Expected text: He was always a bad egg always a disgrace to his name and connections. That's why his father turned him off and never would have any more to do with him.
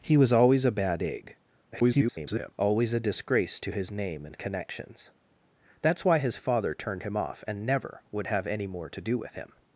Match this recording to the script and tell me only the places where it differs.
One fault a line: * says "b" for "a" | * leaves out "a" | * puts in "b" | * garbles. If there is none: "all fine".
* garbles